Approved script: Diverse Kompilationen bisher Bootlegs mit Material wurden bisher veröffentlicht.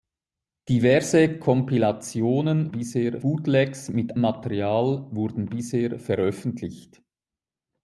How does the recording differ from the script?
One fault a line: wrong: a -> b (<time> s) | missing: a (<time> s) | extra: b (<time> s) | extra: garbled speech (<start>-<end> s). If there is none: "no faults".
no faults